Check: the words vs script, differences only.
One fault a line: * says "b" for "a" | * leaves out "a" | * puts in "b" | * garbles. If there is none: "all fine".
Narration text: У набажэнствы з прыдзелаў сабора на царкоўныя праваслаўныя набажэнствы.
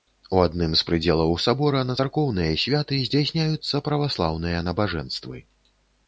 * says "адным" for "набажэнствы"
* puts in "святы здзяйсняюцца"